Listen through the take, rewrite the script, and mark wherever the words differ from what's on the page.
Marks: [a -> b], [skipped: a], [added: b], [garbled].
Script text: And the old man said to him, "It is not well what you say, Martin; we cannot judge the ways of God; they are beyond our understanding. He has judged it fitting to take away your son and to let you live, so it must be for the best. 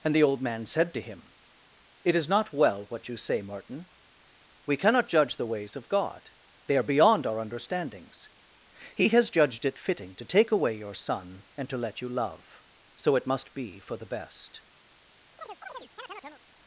And the old man said to him, "It is not well what you say, Martin; we cannot judge the ways of God; they are beyond our [understanding. -> understandings] He has judged it fitting to take away your son and to let you [live, -> love] so it must be for the best.